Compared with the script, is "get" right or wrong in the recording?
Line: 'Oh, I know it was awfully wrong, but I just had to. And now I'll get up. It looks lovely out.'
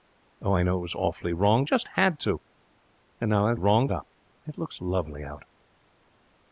wrong